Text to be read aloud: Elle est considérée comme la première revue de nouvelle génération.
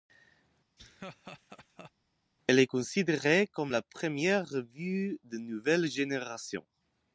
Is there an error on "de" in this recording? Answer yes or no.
no